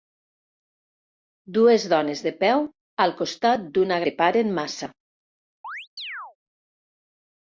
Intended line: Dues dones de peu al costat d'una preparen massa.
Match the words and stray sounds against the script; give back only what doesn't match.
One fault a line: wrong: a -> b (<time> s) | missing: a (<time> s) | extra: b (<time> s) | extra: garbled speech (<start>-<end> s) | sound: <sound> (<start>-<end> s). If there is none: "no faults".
sound: chirp (5.6-6.4 s)